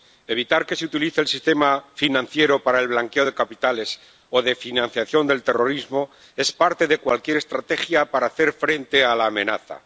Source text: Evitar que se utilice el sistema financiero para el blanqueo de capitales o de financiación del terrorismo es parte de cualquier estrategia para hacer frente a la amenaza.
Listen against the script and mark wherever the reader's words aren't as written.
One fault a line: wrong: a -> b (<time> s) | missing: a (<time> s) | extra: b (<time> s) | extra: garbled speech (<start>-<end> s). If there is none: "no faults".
no faults